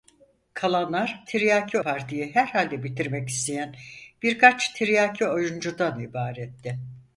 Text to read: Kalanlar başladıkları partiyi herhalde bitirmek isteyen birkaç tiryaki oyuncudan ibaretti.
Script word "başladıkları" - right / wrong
wrong